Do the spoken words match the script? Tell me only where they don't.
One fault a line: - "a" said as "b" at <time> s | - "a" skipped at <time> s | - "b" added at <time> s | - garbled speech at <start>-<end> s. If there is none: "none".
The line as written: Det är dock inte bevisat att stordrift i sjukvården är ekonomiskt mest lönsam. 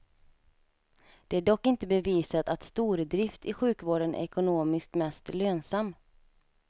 none